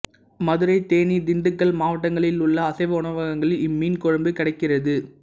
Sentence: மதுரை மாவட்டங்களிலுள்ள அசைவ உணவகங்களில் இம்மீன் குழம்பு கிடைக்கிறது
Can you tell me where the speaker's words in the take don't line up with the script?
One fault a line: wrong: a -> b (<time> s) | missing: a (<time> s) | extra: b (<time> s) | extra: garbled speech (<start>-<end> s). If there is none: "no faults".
extra: தேனி திண்டுக்கல் (0.8 s)